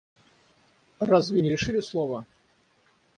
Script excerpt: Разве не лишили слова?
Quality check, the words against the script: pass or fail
pass